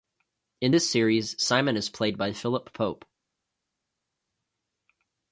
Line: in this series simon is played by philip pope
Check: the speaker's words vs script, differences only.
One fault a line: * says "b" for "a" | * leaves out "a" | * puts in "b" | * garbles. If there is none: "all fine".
all fine